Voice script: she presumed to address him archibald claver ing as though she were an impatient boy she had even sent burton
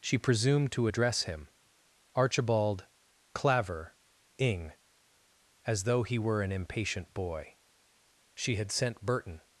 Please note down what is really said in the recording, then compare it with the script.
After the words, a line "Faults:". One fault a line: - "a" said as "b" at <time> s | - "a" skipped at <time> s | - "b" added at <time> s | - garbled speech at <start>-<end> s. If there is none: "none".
she presumed to address him archibald claver ing as though he were an impatient boy she had sent burton
Faults:
- "she" said as "he" at 6.0 s
- "even" skipped at 8.7 s